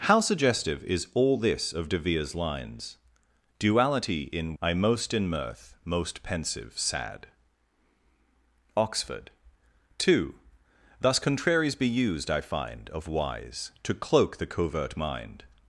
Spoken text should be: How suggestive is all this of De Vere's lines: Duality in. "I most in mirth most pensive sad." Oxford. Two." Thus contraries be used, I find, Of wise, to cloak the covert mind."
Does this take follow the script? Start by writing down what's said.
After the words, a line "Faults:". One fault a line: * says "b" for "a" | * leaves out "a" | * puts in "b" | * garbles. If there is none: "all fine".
How suggestive is all this of De Vere's lines: Duality in. "I most in mirth most pensive sad." Oxford. Two." Thus contraries be used, I find, Of wise, to cloak the covert mind."
Faults:
all fine